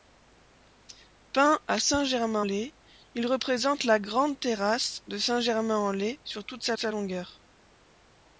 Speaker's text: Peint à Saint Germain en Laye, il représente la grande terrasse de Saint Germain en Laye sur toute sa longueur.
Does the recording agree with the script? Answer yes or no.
no